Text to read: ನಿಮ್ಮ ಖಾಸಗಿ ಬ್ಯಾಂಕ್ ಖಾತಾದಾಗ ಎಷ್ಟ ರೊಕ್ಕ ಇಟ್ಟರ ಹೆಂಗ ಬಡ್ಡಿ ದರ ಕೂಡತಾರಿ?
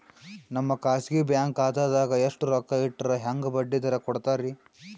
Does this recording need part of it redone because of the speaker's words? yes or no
yes